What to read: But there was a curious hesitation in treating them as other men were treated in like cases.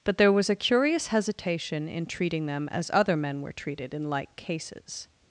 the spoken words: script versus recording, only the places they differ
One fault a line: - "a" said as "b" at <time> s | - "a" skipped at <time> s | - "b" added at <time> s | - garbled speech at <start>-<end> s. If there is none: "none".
none